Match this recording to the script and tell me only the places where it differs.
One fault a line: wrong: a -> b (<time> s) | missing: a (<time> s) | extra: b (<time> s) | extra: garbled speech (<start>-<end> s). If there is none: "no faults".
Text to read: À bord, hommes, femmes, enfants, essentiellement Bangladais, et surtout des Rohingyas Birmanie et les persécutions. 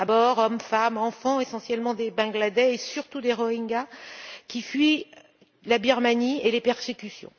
extra: des (1.9 s)
extra: qui fuient la (4.5 s)